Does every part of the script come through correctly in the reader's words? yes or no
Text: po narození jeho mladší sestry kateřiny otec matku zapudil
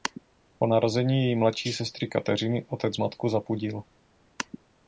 no